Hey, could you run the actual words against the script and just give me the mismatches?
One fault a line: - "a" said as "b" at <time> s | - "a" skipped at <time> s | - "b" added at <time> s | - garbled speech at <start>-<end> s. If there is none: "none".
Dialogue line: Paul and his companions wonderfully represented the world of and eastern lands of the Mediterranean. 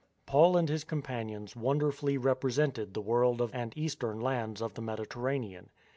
none